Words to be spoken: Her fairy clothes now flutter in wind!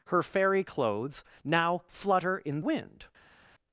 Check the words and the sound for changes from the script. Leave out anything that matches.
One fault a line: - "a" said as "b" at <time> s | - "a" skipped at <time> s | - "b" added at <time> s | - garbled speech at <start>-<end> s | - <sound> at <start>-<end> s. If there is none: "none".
none